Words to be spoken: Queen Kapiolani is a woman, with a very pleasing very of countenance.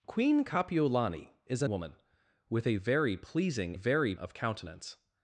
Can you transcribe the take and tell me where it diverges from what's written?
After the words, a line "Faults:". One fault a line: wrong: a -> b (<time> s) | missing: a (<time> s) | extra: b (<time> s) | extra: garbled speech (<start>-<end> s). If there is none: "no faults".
Queen Kapiolani is a woman, with a very pleasing very of countenance.
Faults:
no faults